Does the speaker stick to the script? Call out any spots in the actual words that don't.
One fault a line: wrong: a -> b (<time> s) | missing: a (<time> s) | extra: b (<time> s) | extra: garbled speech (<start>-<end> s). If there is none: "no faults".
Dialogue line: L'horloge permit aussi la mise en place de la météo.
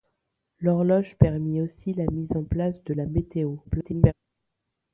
extra: garbled speech (3.6-4.1 s)